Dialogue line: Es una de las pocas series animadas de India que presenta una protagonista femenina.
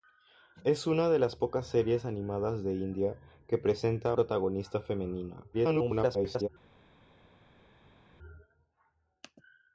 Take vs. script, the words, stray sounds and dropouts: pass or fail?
fail